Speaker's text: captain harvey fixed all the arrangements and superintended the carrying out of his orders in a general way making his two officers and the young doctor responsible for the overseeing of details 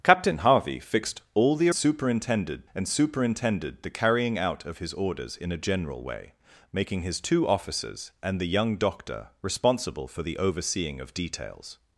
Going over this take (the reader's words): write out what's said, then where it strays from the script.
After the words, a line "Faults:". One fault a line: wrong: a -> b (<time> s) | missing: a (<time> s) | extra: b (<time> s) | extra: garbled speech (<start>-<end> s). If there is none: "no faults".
captain harvey fixed all the superintended and superintended the carrying out of his orders in a general way making his two officers and the young doctor responsible for the overseeing of details
Faults:
wrong: arrangements -> superintended (1.7 s)